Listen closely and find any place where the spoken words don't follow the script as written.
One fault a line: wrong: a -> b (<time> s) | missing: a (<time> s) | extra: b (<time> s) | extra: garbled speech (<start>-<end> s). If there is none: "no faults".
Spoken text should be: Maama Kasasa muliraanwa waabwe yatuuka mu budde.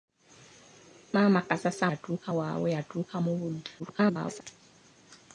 wrong: muliraanwa -> yatuuka (1.9 s)
extra: garbled speech (3.8-4.4 s)